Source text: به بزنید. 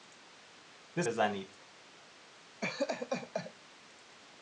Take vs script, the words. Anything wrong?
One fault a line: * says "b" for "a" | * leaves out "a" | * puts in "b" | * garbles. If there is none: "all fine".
all fine